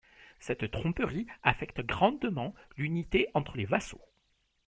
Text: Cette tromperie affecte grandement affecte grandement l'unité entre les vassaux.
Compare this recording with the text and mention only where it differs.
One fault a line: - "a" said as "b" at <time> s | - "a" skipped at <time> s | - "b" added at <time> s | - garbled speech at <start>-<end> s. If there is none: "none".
- "affecte grandement" skipped at 2.5 s